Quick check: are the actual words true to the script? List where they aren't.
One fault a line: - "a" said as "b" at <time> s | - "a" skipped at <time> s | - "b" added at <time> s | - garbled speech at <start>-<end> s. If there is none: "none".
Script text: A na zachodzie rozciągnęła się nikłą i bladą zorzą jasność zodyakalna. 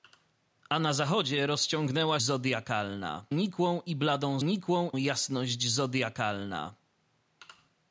- "się" said as "zodyakalna" at 2.2 s
- "zorzą" said as "nikłą" at 4.4 s